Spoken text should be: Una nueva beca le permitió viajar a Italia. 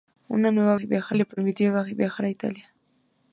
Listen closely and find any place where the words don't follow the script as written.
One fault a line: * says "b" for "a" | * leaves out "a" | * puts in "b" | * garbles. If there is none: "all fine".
* says "viajar" for "beca"